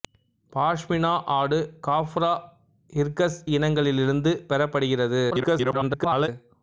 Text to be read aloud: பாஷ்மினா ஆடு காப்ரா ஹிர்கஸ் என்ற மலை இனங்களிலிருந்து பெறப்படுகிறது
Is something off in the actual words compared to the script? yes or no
yes